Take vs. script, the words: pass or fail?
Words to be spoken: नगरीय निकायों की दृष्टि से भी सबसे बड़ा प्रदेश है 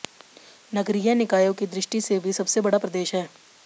pass